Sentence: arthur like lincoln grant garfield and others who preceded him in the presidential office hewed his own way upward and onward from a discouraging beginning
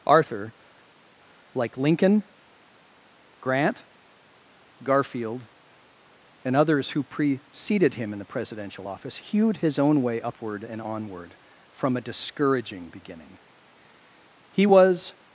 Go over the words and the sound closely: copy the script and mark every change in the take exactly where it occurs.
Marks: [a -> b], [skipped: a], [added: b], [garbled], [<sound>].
arthur like lincoln grant garfield and others who preceded him in the presidential office hewed his own way upward and onward from a discouraging beginning [added: he was]